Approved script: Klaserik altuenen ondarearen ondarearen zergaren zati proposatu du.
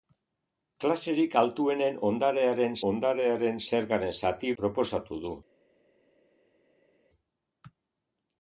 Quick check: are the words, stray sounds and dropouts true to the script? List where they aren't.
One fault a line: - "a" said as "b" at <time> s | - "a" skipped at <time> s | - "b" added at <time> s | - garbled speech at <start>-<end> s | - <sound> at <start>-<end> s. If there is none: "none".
none